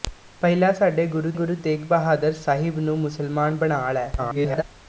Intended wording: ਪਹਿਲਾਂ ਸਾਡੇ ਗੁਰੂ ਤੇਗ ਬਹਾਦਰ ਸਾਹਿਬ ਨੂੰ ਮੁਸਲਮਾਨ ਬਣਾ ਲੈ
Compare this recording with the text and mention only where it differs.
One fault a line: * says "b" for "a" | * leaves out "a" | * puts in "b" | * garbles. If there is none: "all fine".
* puts in "ਗੁਰੂ"
* garbles